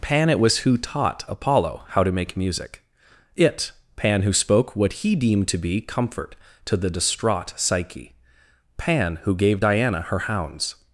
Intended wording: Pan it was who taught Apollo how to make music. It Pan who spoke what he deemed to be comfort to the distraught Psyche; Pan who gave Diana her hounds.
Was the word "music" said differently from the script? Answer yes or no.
no